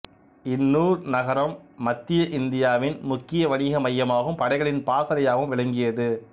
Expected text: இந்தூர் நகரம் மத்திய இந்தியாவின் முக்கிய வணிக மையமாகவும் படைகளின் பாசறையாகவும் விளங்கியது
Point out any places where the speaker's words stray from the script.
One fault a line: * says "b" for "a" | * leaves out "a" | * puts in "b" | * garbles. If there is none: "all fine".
all fine